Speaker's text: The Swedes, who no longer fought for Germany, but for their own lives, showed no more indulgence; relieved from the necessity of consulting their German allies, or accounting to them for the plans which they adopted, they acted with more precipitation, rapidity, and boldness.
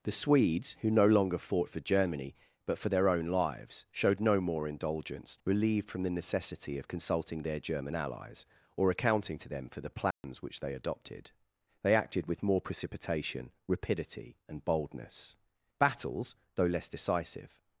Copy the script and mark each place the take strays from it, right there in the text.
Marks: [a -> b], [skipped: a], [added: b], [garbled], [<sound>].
The Swedes, who no longer fought for Germany, but for their own lives, showed no more indulgence; relieved from the necessity of consulting their German allies, or accounting to them for the plans [dropout] which they adopted, they acted with more precipitation, rapidity, and boldness. [added: Battles though less decisive]